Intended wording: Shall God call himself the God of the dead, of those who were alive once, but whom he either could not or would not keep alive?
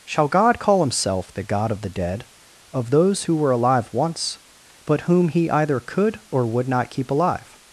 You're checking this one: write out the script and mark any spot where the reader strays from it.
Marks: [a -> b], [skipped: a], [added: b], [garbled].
Shall God call himself the God of the dead, of those who were alive once, but whom he either could [skipped: not] or would not keep alive?